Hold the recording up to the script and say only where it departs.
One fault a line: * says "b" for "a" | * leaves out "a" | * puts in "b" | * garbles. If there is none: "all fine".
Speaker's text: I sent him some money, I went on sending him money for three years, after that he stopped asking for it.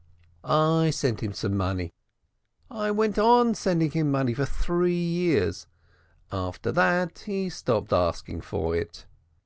all fine